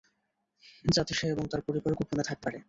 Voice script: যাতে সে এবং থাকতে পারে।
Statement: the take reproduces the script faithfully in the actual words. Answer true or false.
false